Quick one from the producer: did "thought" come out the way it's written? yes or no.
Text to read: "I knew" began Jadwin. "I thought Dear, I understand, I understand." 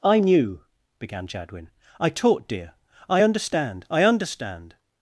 no